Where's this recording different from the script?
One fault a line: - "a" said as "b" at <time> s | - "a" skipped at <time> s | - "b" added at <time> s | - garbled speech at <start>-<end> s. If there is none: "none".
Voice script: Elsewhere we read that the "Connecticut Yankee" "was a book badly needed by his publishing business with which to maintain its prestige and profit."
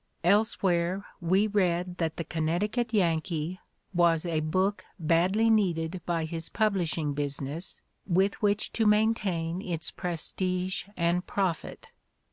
none